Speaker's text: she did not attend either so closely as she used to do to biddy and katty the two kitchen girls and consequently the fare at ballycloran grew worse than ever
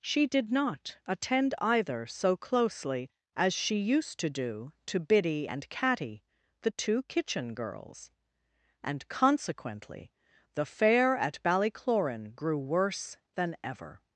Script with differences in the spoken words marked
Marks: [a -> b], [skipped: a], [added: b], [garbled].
she did not attend either so closely as she used to do to biddy and katty the two kitchen girls and consequently the fare at ballycloran grew worse than ever